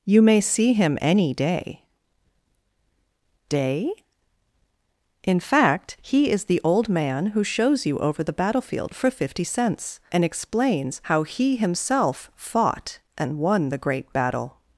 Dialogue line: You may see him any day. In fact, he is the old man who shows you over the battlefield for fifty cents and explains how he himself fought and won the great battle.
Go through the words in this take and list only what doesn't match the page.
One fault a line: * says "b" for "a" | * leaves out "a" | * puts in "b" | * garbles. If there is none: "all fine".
* puts in "day"